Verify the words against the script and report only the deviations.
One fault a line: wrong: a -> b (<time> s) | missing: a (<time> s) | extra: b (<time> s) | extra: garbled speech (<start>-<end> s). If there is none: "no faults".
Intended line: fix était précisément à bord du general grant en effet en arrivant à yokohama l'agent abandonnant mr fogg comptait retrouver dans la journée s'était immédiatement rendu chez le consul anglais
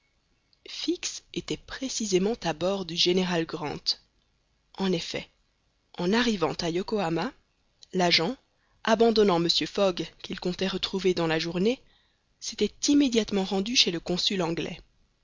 extra: qu'il (10.2 s)